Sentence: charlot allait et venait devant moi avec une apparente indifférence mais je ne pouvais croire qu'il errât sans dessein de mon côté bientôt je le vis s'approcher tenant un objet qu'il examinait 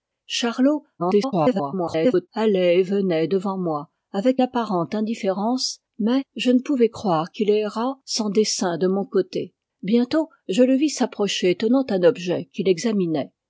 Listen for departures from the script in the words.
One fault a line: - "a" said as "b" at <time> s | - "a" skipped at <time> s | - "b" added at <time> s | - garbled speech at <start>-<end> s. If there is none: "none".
- garbled speech at 1.0-2.3 s
- "une" skipped at 4.4 s